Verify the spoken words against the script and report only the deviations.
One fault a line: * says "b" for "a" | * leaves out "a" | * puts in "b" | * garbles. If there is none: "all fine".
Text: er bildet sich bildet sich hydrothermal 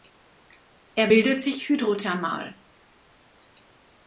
* leaves out "bildet sich"